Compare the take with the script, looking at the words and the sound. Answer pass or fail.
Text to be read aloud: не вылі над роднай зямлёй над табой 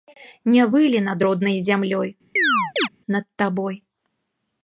fail